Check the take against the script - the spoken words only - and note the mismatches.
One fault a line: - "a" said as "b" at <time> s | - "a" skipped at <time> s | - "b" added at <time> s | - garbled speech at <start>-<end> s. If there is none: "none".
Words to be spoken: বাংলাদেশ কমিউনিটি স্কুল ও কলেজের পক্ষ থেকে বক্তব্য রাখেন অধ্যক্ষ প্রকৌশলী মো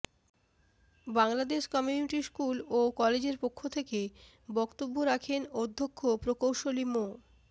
none